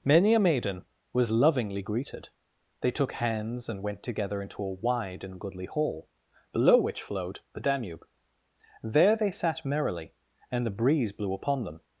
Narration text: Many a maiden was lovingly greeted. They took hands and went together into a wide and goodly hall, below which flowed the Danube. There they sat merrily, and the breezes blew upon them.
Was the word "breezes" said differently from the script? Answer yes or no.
yes